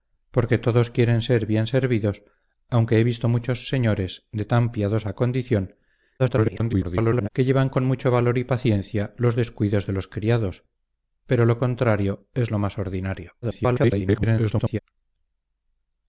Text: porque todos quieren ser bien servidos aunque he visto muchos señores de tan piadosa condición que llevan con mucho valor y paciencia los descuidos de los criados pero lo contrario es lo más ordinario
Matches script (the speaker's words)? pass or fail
fail